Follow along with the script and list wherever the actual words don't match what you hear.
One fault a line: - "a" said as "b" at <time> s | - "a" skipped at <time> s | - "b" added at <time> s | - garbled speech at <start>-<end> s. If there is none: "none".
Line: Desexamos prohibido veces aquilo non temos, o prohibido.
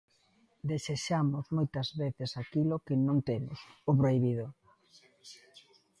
- "prohibido" said as "moitas" at 1.6 s
- "que" added at 2.9 s